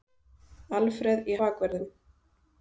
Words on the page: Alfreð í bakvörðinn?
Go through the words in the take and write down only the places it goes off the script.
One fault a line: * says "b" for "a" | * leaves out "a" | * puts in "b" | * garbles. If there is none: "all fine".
all fine